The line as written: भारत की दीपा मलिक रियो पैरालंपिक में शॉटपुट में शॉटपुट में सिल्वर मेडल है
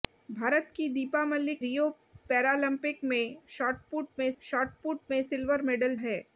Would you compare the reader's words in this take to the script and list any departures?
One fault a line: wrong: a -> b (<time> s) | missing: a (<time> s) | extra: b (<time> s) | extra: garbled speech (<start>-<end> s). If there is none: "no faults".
no faults